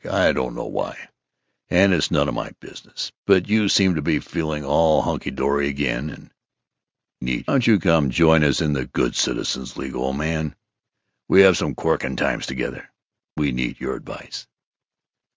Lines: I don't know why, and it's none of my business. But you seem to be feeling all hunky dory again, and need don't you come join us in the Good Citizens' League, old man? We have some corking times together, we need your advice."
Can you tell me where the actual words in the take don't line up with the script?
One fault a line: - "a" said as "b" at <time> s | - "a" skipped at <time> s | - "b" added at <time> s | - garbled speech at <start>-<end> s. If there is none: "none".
none